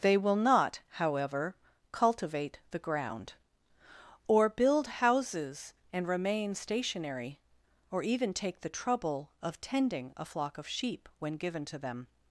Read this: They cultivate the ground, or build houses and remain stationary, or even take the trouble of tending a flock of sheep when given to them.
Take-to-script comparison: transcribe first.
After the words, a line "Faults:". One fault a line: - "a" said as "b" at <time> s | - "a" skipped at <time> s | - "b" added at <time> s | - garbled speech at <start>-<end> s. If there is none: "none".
They will not, however, cultivate the ground, or build houses and remain stationary, or even take the trouble of tending a flock of sheep when given to them.
Faults:
- "will not however" added at 0.2 s